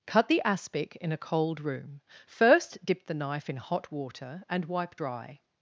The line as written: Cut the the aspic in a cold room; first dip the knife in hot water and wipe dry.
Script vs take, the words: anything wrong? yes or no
yes